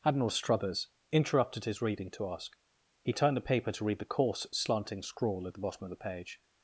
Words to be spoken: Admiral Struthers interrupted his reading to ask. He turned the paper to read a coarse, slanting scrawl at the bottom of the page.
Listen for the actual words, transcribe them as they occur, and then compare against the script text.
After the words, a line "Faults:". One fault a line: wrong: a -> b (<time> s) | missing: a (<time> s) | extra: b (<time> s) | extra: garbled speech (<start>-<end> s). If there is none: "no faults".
Admiral Struthers interrupted his reading to ask. He turned the paper to read the coarse, slanting scrawl at the bottom of the page.
Faults:
wrong: a -> the (4.0 s)